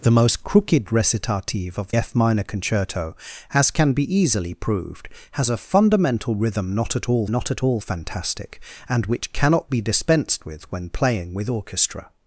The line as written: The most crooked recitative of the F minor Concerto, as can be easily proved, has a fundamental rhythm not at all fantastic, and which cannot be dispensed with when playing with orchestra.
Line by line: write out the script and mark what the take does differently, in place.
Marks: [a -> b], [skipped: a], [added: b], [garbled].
The most crooked recitative of [skipped: the] F minor Concerto, as can be easily proved, has a fundamental rhythm not at all [added: not at all] fantastic, and which cannot be dispensed with when playing with orchestra.